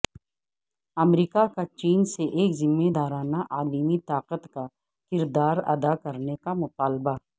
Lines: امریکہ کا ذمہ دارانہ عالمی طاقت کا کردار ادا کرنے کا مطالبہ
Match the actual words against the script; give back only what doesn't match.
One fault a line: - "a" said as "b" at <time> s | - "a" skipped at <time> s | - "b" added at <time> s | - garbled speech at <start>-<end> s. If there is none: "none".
- "چین سے ایک" added at 1.8 s